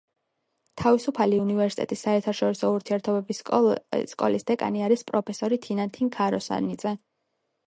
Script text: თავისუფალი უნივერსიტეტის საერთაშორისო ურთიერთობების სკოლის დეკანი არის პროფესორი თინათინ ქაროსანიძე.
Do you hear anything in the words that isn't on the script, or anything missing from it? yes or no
no